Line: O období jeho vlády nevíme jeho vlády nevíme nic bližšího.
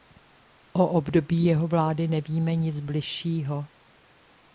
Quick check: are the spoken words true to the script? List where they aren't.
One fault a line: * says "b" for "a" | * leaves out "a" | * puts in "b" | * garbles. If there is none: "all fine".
* leaves out "jeho vlády nevíme"